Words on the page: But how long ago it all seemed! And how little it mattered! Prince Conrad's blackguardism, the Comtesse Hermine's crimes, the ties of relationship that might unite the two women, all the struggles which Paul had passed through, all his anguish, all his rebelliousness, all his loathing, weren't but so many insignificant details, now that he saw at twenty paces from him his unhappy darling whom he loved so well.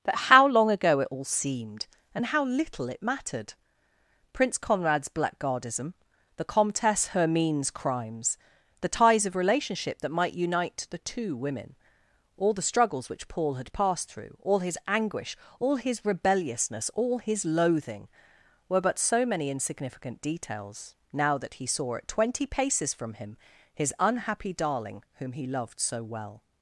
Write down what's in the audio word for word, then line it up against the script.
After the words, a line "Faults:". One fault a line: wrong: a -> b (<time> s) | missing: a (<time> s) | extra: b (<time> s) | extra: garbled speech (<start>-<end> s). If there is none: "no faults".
But how long ago it all seemed! And how little it mattered! Prince Conrad's blackguardism, the Comtesse Hermine's crimes, the ties of relationship that might unite the two women, all the struggles which Paul had passed through, all his anguish, all his rebelliousness, all his loathing, were but so many insignificant details, now that he saw at twenty paces from him his unhappy darling whom he loved so well.
Faults:
wrong: weren't -> were (18.7 s)